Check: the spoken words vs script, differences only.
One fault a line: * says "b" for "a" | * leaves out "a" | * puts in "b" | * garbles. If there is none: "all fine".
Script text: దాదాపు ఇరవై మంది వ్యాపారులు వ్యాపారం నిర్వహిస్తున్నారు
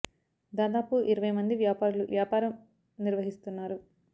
all fine